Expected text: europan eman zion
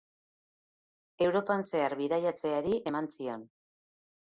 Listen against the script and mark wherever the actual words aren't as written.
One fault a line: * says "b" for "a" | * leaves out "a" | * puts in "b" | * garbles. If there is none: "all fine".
* puts in "zehar bidaiatzeari"